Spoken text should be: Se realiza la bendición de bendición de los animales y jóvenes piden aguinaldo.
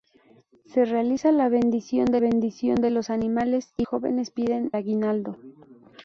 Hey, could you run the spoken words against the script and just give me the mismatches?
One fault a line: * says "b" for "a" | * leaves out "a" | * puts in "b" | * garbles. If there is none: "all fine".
all fine